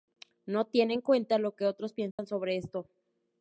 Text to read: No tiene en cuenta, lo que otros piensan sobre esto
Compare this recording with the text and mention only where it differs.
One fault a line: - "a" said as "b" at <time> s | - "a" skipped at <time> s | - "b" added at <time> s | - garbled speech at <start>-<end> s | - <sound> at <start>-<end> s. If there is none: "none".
- dropout at 2.1-2.2 s